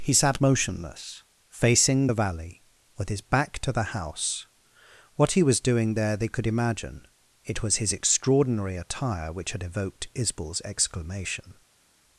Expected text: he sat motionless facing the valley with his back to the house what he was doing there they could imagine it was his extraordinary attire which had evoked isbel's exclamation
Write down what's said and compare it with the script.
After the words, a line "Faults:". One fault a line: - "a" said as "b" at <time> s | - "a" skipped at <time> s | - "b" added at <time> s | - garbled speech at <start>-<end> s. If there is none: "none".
he sat motionless facing the valley with his back to the house what he was doing there they could imagine it was his extraordinary attire which had evoked isbel's exclamation
Faults:
none